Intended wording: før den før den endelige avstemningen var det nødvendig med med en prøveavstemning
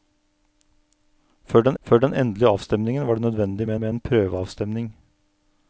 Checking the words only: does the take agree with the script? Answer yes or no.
yes